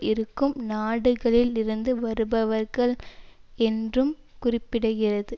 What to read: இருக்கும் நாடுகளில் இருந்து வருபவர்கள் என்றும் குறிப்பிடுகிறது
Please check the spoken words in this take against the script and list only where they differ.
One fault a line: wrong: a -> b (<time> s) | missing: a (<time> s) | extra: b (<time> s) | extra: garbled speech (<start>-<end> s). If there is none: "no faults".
no faults